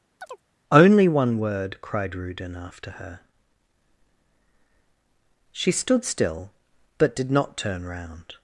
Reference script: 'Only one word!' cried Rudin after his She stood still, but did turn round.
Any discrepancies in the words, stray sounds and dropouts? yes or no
yes